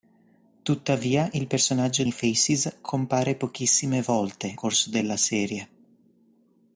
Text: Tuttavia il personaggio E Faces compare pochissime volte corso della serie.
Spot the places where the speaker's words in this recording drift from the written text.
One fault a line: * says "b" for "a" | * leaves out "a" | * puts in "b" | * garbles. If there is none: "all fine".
all fine